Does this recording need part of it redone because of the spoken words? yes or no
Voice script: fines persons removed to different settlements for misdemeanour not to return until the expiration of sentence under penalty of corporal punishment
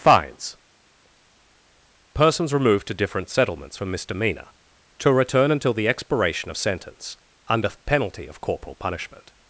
yes